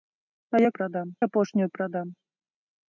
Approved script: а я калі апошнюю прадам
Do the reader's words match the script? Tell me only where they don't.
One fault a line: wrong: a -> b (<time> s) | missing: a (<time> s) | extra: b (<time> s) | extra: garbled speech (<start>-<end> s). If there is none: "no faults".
wrong: калі -> прадам (0.8 s)